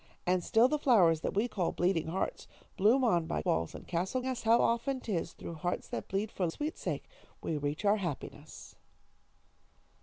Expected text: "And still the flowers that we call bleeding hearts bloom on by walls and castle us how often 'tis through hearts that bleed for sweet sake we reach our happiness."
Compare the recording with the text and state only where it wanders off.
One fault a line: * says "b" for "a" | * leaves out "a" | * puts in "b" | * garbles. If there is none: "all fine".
all fine